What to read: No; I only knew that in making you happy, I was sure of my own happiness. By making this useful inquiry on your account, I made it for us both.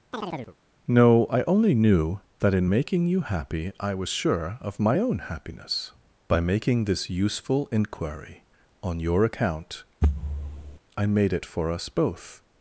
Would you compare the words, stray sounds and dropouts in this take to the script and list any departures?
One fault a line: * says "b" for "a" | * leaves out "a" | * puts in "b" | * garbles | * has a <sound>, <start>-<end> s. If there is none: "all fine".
* has a chirp, 0.1-0.6 s
* has a thud, 10.0-10.8 s